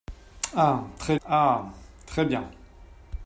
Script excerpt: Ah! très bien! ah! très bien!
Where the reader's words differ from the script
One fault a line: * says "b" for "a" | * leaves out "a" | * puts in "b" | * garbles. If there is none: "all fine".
* leaves out "bien"